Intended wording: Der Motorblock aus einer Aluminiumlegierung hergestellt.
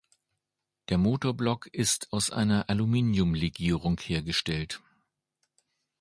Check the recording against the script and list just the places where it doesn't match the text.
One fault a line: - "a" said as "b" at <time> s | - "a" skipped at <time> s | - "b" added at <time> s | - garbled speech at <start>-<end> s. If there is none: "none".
- "ist" added at 1.7 s